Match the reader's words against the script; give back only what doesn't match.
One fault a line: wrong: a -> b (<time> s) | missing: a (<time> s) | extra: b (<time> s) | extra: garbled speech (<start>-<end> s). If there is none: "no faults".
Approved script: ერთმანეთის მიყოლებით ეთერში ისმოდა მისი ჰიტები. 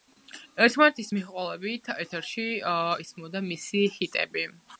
no faults